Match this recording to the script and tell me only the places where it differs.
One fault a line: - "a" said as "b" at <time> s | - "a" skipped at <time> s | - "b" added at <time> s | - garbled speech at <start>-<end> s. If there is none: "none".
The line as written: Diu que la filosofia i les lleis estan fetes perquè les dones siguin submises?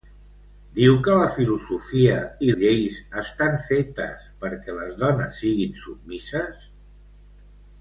- "les" skipped at 2.5 s